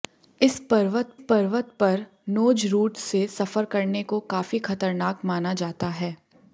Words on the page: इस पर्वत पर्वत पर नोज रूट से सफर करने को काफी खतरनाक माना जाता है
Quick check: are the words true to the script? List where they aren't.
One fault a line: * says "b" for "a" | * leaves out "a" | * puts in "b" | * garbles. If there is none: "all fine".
all fine